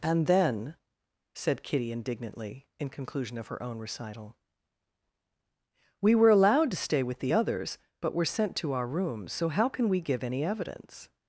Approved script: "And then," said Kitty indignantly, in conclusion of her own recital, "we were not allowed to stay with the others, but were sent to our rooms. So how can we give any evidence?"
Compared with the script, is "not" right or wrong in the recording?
wrong